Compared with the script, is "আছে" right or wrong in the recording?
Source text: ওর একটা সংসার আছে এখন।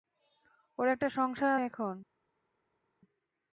wrong